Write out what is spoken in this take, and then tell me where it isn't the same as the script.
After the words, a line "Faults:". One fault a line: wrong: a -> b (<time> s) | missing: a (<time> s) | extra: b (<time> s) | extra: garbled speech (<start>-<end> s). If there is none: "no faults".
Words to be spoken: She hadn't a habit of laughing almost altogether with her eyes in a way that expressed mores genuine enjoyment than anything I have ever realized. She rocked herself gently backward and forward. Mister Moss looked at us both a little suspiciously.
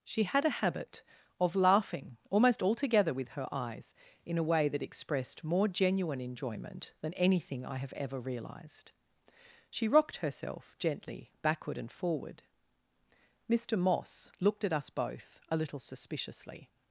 She had a habit of laughing almost altogether with her eyes in a way that expressed more genuine enjoyment than anything I have ever realized. She rocked herself gently backward and forward. Mister Moss looked at us both a little suspiciously.
Faults:
wrong: hadn't -> had (0.2 s)
wrong: mores -> more (5.4 s)